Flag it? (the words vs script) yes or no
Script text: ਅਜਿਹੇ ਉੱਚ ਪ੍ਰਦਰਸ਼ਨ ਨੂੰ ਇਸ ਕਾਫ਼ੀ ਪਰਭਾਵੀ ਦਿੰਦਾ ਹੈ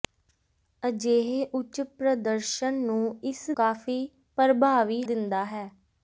no